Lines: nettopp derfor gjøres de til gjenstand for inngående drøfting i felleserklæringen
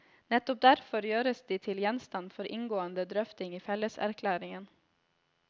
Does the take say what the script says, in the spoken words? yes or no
yes